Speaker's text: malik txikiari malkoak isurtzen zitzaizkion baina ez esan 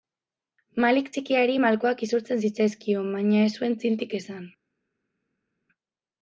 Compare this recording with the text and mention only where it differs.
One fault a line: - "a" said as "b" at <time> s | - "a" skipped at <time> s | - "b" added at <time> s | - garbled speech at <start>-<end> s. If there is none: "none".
- "zuen txintik" added at 3.6 s